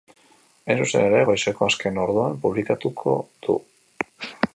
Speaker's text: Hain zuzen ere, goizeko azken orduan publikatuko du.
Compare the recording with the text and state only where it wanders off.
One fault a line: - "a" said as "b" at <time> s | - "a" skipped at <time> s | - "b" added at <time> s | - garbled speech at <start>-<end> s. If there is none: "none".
none